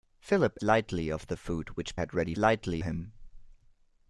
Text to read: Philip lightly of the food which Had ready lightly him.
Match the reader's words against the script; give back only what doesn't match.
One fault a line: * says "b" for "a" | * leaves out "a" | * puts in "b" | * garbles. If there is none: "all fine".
all fine